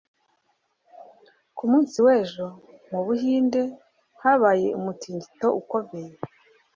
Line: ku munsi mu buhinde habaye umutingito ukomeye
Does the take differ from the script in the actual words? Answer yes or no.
yes